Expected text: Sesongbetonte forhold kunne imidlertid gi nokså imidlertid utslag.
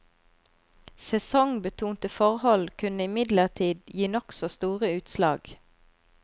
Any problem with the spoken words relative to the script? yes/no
yes